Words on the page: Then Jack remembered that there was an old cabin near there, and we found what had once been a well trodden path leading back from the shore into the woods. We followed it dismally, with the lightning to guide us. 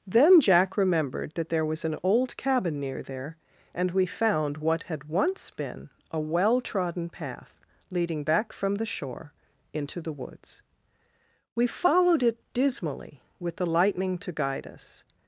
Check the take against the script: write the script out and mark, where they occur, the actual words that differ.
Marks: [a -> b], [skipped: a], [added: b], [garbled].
Then Jack remembered that there was an old cabin near there, and we found what had once been a well trodden path leading back from the shore into the woods. We followed it dismally, with the lightning to guide us.